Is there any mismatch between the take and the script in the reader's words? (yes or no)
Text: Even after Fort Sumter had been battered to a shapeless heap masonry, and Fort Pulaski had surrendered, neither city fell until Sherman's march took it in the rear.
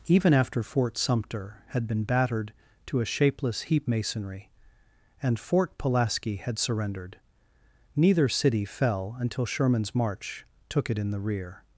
no